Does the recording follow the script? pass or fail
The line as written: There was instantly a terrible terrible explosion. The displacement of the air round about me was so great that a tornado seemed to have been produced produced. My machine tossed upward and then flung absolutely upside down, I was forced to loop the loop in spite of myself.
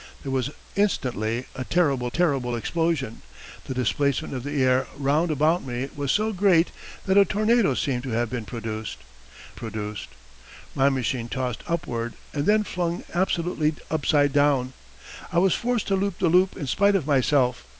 pass